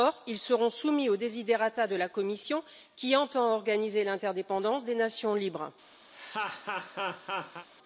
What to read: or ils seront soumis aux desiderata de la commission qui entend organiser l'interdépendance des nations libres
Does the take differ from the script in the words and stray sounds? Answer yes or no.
yes